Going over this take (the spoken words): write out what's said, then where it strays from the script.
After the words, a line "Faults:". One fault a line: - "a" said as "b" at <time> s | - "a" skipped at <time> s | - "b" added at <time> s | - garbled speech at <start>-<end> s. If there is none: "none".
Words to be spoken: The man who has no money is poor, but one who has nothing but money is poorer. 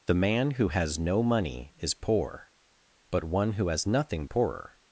The man who has no money is poor, but one who has nothing poorer.
Faults:
- "but money is" skipped at 4.2 s